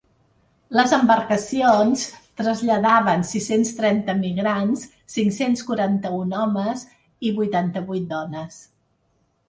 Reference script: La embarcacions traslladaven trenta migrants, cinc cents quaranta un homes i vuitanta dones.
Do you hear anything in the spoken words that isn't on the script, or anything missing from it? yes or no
yes